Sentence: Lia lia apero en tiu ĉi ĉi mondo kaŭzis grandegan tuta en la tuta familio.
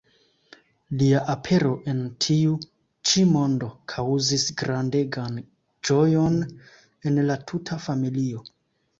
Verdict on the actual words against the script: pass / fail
fail